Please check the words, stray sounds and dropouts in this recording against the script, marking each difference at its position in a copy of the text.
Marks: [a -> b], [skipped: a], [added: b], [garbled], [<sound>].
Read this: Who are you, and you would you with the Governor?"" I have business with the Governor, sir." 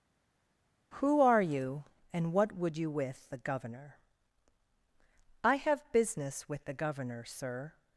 Who are you, and [you -> what] would you with the Governor?"" I have business with the Governor, sir."